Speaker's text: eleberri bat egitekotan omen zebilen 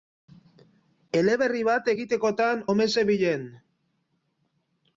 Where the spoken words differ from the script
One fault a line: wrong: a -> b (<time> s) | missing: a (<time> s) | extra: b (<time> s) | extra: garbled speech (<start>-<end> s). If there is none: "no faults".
no faults